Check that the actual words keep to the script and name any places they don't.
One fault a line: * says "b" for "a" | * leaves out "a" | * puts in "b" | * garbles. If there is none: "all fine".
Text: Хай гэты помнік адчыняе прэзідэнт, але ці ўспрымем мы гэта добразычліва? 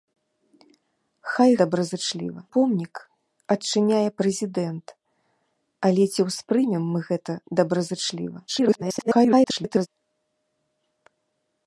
* says "добразычліва" for "гэты"
* garbles